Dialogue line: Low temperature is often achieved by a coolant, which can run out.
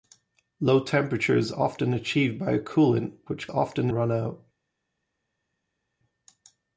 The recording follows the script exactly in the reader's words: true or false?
false